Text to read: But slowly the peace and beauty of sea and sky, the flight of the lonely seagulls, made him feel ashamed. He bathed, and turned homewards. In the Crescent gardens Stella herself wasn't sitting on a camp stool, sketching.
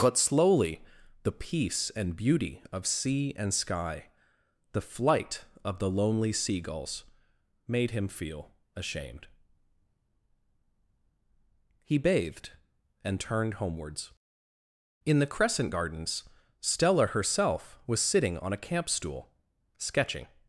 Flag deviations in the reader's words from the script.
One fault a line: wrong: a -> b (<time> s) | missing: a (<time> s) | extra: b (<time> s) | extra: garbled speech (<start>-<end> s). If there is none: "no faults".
wrong: wasn't -> was (17.9 s)